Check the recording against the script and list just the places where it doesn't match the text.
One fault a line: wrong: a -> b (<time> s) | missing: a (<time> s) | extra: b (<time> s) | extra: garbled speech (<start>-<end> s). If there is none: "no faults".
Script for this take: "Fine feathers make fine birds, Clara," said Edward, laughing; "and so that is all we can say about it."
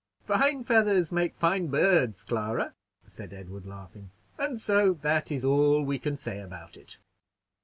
no faults